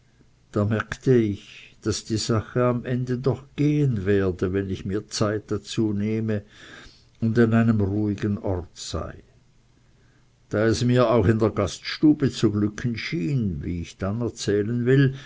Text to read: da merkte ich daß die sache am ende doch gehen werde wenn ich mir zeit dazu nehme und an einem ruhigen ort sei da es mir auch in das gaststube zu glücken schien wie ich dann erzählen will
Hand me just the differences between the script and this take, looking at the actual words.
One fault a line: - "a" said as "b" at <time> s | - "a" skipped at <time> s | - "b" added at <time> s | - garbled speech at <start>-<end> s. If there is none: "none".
- "das" said as "der" at 11.4 s